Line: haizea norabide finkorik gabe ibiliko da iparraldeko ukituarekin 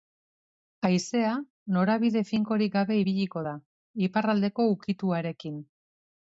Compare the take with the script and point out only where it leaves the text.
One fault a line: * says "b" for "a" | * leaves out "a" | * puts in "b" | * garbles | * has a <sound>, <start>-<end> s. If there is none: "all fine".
all fine